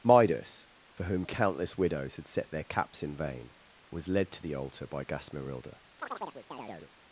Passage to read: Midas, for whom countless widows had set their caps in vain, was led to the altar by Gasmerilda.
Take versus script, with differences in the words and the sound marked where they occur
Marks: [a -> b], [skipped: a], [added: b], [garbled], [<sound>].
Midas, for whom countless widows had set their caps in vain, was led to the altar by Gasmerilda. [chirp]